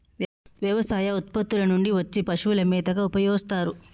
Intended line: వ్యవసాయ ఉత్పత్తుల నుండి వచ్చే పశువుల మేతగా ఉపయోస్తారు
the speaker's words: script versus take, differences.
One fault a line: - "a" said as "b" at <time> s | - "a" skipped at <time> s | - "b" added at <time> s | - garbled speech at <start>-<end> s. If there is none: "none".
none